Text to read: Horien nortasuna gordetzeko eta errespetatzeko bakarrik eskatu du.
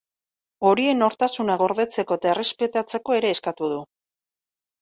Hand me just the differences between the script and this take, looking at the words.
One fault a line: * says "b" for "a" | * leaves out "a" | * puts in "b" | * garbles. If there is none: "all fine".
* says "ere" for "bakarrik"